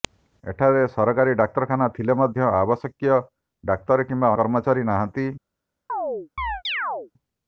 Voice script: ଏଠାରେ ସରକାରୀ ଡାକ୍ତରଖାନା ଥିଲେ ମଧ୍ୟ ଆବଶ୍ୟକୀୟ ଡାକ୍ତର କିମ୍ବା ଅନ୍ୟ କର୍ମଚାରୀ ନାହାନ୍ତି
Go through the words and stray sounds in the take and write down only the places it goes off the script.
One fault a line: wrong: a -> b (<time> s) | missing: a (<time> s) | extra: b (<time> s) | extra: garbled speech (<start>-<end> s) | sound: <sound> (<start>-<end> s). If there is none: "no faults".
missing: ଅନ୍ୟ (4.3 s)
sound: chirp (5.9-7.1 s)